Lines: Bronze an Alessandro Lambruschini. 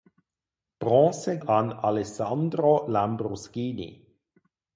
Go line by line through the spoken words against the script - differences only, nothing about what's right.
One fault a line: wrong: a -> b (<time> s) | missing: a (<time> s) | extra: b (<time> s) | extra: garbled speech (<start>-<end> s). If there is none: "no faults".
no faults